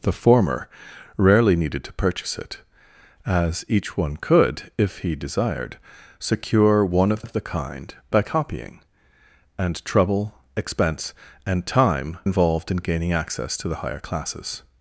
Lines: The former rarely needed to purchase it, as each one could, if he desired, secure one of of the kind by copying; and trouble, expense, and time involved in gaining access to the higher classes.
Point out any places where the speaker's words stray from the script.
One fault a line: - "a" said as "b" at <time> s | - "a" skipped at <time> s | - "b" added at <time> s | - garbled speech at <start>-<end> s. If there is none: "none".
none